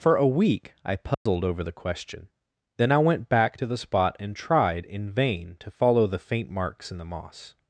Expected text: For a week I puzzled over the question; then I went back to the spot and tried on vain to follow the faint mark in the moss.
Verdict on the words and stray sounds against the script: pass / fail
fail